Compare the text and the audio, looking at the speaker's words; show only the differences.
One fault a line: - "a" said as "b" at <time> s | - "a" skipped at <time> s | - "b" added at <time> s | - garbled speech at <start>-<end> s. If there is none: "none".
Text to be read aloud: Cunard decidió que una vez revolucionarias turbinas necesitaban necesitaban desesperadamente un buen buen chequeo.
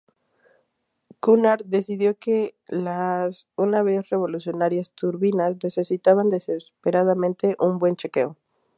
- "las" added at 2.7 s
- "necesitaban" skipped at 6.3 s
- "buen" skipped at 8.0 s